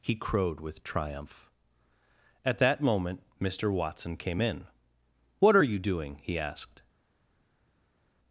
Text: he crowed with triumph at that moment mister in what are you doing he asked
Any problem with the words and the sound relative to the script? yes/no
yes